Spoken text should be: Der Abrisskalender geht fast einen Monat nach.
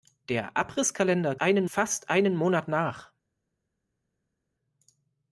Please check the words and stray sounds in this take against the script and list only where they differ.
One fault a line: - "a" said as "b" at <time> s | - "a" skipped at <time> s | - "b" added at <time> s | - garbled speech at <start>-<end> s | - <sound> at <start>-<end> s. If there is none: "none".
- "geht" said as "einen" at 1.4 s